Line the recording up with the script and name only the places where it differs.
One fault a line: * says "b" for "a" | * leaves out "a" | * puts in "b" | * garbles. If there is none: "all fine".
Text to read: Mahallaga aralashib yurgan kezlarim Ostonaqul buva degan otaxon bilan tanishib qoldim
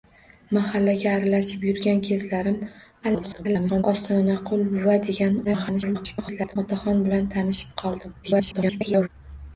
* garbles
* garbles
* garbles